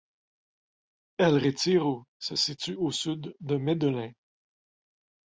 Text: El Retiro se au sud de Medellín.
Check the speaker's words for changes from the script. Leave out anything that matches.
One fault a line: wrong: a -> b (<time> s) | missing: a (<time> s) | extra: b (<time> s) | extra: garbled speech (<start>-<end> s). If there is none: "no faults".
extra: situe (2.3 s)